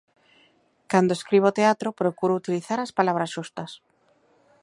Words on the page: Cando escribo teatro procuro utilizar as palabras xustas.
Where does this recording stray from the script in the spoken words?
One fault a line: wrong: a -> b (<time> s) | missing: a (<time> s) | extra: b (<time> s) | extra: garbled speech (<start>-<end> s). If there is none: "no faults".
no faults